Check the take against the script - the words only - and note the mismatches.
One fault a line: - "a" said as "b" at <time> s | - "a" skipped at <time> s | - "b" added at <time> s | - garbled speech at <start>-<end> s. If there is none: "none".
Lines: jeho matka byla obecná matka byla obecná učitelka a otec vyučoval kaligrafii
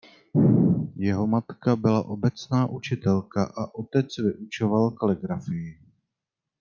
- "matka byla obecná" skipped at 2.7 s